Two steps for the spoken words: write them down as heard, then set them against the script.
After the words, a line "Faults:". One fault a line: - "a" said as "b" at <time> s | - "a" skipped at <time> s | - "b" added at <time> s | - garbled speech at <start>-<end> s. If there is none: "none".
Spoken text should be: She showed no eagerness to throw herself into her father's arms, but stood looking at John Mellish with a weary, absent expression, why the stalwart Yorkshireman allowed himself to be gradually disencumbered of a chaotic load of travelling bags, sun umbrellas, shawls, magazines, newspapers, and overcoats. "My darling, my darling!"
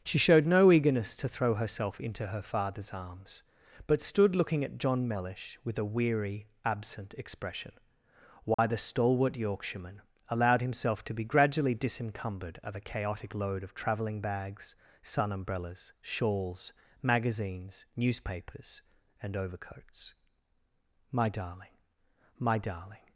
She showed no eagerness to throw herself into her father's arms, but stood looking at John Mellish with a weary, absent expression, why the stalwart Yorkshireman allowed himself to be gradually disencumbered of a chaotic load of travelling bags, sun umbrellas, shawls, magazines, newspapers, and overcoats. "My darling, my darling!"
Faults:
none